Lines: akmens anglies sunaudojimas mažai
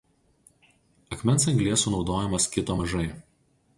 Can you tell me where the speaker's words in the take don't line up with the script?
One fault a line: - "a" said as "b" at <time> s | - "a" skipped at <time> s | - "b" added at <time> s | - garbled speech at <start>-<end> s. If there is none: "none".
- "kito" added at 2.6 s